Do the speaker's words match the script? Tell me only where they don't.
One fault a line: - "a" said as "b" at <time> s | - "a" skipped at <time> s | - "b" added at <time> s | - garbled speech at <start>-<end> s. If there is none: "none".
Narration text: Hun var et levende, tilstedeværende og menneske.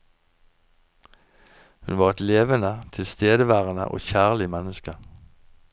- "kjærlig" added at 4.0 s